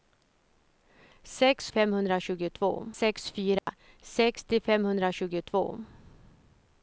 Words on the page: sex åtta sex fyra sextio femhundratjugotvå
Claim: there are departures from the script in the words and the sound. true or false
true